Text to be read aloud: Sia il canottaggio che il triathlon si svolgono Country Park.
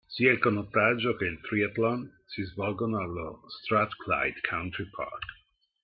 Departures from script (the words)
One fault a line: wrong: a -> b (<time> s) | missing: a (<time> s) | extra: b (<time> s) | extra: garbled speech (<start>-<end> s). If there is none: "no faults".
extra: allo Strathclyde (3.0 s)